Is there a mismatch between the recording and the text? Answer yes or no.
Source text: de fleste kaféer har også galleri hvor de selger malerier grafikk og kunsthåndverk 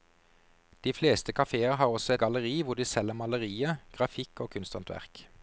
no